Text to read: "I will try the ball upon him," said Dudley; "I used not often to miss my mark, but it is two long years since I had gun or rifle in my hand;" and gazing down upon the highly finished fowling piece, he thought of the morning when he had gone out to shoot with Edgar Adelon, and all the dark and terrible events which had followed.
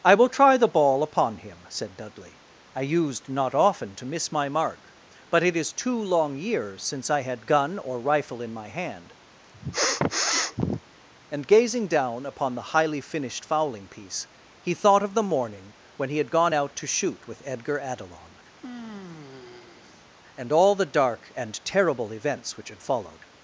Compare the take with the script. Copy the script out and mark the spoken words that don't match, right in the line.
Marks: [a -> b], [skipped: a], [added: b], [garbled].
"I will try the ball upon him," said Dudley; "I used not often to miss my mark, but it is two long years since I had gun or rifle in my hand;" and gazing down upon the highly finished fowling piece, he thought of the morning when he had gone out to shoot with Edgar Adelon, and all the dark and terrible events which had followed.